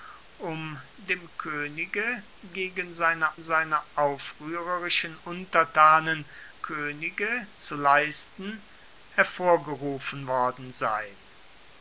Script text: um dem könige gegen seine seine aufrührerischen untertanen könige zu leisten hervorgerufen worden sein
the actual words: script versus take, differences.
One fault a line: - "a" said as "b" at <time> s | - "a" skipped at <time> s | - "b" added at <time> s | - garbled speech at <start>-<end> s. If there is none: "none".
none